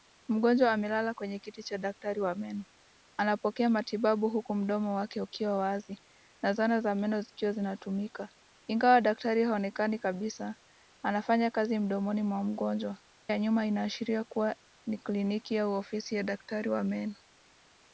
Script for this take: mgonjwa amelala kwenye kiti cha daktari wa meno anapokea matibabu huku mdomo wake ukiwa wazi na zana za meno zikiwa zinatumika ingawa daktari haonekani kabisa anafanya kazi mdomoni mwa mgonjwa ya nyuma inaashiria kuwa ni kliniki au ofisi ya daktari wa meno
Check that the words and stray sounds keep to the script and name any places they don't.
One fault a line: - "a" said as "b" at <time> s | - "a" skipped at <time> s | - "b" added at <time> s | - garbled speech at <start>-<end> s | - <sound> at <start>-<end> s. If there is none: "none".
none